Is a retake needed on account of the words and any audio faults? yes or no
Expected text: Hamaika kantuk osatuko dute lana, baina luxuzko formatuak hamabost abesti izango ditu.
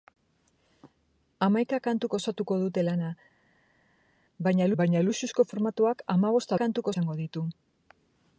yes